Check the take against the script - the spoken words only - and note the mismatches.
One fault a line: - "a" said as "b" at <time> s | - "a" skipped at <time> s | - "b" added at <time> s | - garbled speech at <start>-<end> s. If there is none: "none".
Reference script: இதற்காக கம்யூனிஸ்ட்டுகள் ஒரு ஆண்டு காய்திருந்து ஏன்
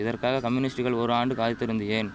none